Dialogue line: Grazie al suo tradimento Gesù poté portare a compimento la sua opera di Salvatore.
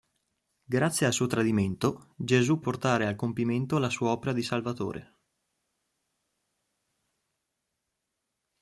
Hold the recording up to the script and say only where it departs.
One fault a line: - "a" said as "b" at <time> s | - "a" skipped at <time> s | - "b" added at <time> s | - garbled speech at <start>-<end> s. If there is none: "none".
- "poté" skipped at 2.6 s